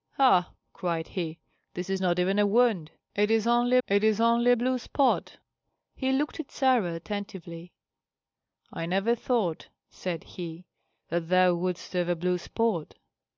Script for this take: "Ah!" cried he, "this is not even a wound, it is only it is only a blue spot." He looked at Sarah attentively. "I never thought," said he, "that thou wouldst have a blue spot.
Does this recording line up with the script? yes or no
yes